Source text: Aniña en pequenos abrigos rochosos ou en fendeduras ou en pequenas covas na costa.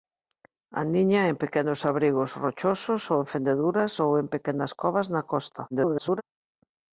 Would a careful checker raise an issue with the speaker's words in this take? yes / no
yes